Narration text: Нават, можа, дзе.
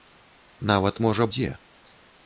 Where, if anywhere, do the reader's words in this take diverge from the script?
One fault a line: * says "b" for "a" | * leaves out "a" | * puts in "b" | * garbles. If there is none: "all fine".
all fine